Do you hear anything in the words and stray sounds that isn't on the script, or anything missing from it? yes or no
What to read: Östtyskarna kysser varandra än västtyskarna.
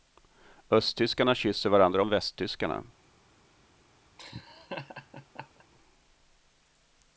yes